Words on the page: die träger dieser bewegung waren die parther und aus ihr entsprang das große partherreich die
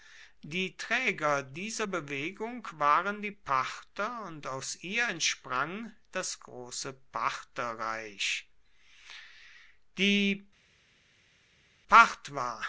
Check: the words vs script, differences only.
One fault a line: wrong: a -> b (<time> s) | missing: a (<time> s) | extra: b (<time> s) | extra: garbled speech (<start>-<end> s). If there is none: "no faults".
no faults